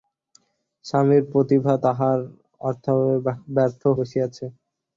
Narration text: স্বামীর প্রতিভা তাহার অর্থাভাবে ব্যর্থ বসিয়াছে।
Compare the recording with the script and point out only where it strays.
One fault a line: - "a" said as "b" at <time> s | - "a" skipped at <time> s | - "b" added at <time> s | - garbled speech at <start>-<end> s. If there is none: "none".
none